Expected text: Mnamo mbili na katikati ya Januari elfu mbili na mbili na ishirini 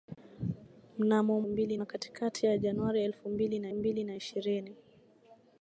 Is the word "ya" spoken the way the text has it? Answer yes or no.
yes